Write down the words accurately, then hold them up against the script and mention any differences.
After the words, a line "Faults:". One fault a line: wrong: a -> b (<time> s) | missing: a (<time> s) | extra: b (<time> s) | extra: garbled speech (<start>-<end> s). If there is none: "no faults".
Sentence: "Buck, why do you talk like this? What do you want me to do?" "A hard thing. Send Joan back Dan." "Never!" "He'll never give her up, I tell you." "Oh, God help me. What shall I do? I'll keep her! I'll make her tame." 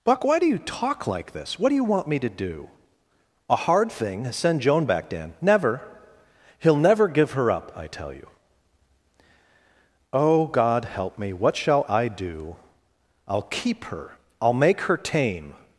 "Buck, why do you talk like this? What do you want me to do?" "A hard thing. Send Joan back Dan." "Never!" "He'll never give her up, I tell you." "Oh, God help me. What shall I do? I'll keep her! I'll make her tame."
Faults:
no faults